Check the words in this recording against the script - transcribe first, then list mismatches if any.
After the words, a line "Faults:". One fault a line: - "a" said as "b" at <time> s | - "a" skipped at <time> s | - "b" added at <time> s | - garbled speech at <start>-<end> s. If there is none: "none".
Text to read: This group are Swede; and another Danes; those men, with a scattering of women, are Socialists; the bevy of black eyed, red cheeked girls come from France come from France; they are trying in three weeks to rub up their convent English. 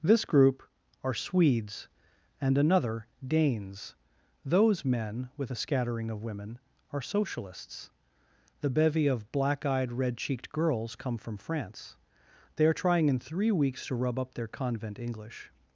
This group are Swedes; and another Danes; those men, with a scattering of women, are Socialists; the bevy of black eyed, red cheeked girls come from France; they are trying in three weeks to rub up their convent English.
Faults:
- "Swede" said as "Swedes" at 1.1 s
- "come from France" skipped at 12.0 s